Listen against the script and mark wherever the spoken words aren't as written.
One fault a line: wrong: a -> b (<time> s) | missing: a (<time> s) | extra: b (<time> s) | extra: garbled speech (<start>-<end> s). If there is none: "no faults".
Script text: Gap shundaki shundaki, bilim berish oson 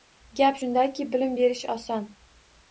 missing: shundaki (1.1 s)